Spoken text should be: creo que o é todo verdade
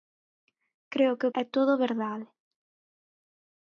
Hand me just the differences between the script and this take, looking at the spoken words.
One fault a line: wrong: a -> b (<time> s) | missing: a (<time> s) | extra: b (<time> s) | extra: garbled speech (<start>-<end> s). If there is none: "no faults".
no faults